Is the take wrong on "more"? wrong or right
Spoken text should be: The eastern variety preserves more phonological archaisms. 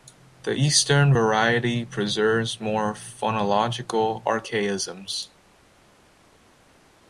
right